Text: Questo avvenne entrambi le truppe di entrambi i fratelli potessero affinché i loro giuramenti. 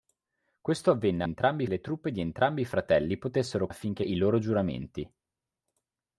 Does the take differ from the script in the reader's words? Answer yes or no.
no